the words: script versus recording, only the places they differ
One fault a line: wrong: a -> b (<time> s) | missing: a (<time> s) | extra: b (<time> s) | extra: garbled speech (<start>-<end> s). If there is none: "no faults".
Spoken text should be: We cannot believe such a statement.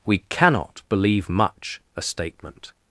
wrong: such -> much (1.3 s)